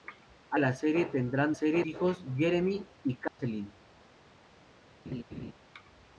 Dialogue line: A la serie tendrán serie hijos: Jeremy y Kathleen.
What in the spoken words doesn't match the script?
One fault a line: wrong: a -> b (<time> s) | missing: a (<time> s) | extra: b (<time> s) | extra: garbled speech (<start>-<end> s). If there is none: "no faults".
no faults